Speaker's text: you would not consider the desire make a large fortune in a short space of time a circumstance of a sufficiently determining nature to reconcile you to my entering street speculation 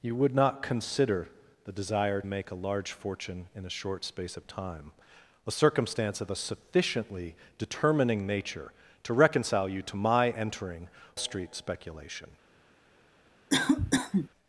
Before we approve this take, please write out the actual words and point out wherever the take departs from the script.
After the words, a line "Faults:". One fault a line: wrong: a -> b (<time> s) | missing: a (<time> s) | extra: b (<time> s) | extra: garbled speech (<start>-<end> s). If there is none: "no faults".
you would not consider the desire make a large fortune in a short space of time a circumstance of a sufficiently determining nature to reconcile you to my entering street speculation
Faults:
no faults